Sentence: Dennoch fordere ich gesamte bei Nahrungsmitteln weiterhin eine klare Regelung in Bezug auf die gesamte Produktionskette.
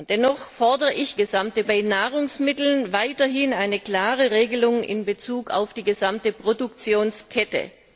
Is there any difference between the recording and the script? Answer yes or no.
no